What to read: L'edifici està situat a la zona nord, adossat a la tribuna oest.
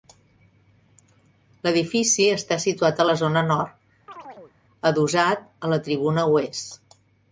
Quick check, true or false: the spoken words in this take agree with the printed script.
true